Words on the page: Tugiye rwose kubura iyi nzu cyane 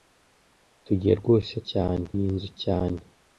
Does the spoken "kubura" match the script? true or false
false